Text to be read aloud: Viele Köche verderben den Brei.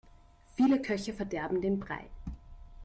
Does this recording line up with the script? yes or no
yes